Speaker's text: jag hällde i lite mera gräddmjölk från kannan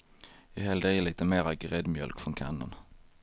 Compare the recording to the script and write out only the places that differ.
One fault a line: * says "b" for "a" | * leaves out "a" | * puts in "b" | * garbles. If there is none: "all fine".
all fine